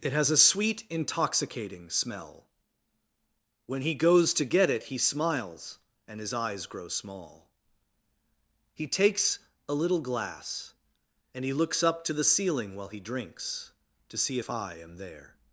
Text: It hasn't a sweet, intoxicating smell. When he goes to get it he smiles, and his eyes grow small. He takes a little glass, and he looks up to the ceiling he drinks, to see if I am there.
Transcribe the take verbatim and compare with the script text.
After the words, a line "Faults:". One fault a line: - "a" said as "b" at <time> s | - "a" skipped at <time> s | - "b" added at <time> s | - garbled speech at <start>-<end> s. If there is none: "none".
It has a sweet, intoxicating smell. When he goes to get it he smiles, and his eyes grow small. He takes a little glass, and he looks up to the ceiling while he drinks, to see if I am there.
Faults:
- "hasn't" said as "has" at 0.1 s
- "while" added at 12.8 s